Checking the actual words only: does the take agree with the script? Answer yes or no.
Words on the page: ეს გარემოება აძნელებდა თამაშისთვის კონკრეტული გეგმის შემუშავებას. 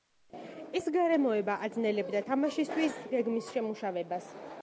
no